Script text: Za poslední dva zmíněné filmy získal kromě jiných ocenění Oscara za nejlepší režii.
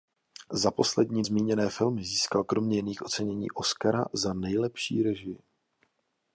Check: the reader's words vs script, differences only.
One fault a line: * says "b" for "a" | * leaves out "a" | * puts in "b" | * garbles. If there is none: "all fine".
* leaves out "dva"